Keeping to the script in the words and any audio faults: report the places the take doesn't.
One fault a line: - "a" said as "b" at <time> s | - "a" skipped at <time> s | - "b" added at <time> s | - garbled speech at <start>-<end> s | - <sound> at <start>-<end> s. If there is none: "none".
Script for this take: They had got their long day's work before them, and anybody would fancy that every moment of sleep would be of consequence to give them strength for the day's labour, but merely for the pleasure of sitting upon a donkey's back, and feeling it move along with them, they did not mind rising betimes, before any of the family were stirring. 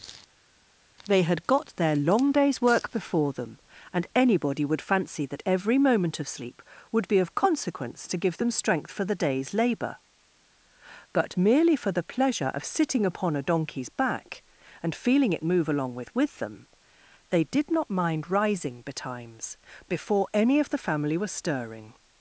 - "with" added at 16.1 s